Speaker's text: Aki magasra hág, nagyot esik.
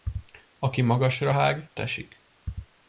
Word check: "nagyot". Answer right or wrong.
wrong